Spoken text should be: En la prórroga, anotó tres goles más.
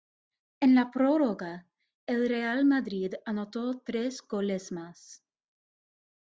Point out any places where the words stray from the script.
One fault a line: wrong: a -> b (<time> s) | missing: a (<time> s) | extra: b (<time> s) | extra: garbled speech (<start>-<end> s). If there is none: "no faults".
extra: el Real Madrid (2.1 s)